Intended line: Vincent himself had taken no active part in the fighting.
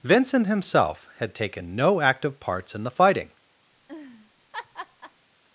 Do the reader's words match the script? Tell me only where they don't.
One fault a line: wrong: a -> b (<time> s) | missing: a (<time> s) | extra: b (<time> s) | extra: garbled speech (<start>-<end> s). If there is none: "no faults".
wrong: part -> parts (2.4 s)